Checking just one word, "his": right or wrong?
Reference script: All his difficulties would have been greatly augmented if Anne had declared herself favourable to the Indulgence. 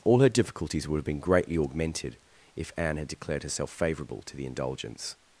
wrong